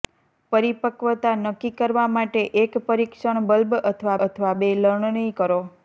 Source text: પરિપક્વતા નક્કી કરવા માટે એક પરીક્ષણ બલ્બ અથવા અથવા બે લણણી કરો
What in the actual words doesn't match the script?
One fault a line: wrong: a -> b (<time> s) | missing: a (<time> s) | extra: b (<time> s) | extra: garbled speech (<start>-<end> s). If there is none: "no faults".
no faults